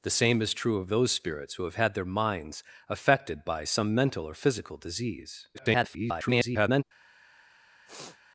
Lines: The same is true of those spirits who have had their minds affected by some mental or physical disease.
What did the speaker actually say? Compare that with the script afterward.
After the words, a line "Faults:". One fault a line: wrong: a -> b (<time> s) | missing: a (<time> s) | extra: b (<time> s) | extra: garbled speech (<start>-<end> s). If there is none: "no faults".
The same is true of those spirits who have had their minds affected by some mental or physical disease. [garbled]
Faults:
extra: garbled speech (5.5-6.8 s)